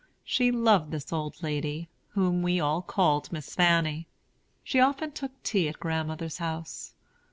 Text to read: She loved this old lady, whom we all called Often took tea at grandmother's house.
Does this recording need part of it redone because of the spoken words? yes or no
yes